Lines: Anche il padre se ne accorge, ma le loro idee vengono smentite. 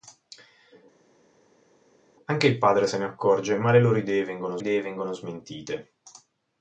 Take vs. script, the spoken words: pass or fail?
fail